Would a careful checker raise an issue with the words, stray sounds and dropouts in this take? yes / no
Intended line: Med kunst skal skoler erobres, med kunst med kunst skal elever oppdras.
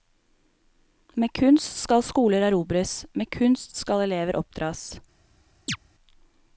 yes